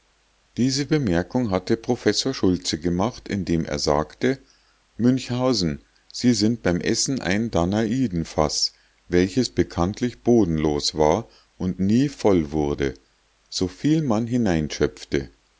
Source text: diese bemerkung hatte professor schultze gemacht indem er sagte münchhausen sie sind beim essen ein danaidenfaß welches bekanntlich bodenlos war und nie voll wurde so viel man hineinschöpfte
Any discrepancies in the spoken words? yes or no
no